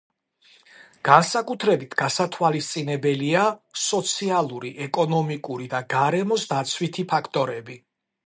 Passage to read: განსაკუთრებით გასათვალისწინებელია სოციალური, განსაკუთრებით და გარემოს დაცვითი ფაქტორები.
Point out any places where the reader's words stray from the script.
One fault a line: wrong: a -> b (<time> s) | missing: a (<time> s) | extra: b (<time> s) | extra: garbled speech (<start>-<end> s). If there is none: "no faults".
wrong: განსაკუთრებით -> ეკონომიკური (4.9 s)